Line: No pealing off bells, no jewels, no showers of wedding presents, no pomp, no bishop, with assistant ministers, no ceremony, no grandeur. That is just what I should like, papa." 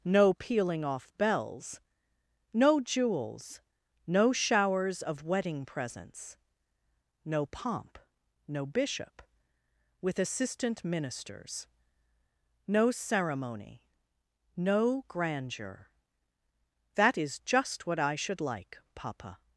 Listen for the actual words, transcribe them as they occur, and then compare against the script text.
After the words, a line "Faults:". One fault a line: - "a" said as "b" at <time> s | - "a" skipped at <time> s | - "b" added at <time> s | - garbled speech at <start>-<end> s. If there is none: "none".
No pealing off bells, no jewels, no showers of wedding presents, no pomp, no bishop, with assistant ministers, no ceremony, no grandeur. That is just what I should like, papa."
Faults:
none